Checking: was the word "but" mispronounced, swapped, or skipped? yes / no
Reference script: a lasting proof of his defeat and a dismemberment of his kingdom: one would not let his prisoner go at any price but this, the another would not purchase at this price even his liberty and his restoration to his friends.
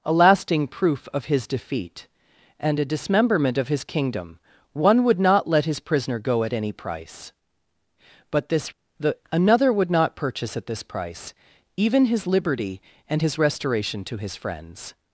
no